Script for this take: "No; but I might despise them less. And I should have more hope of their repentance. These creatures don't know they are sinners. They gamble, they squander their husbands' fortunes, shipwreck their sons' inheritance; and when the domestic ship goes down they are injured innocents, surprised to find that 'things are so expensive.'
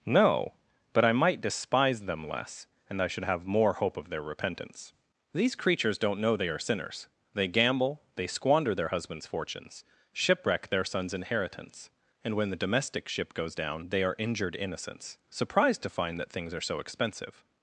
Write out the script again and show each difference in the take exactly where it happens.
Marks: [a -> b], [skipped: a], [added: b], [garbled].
"No; but I might despise them less. And I should have more hope of their repentance. These creatures don't know they are sinners. They gamble, they squander their husbands' fortunes, shipwreck their sons' inheritance; and when the domestic ship goes down they are injured innocents, surprised to find that 'things are so expensive.'